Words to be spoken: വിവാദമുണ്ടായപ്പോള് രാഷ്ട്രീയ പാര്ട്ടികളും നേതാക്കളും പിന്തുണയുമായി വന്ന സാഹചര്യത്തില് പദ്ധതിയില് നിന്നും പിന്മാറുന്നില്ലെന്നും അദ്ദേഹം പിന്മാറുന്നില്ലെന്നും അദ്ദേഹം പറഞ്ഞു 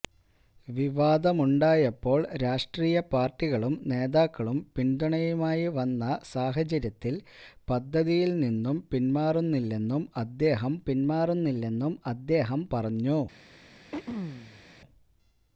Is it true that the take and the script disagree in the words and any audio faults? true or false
true